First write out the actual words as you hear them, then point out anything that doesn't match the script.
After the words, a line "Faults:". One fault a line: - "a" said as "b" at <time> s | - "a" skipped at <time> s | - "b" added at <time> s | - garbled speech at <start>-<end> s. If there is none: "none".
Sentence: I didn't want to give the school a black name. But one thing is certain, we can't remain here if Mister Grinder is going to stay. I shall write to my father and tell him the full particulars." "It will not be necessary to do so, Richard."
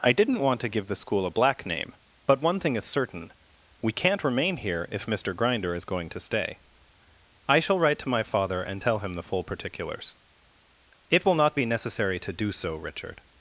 I didn't want to give the school a black name. But one thing is certain, we can't remain here if Mister Grinder is going to stay. I shall write to my father and tell him the full particulars." "It will not be necessary to do so, Richard."
Faults:
none